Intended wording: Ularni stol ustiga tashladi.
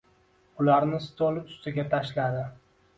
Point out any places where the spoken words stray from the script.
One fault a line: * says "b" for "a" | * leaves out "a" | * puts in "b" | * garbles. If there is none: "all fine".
all fine